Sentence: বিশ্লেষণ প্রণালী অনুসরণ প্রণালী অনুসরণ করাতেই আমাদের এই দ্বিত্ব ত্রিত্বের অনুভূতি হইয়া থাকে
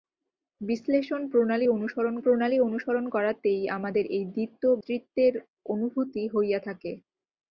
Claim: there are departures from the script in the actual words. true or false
false